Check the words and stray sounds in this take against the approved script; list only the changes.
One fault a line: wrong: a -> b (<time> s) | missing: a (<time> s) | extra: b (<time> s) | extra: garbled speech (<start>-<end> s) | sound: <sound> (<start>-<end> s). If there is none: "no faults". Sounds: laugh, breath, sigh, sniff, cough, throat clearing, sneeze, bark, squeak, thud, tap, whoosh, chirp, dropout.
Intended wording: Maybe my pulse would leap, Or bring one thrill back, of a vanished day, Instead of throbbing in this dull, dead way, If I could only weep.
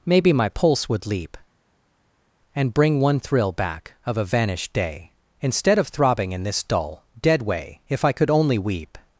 wrong: Or -> And (2.5 s)